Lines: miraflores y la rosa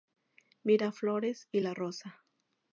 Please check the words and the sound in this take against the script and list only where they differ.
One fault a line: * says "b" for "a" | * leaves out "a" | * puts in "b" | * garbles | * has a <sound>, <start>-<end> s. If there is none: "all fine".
all fine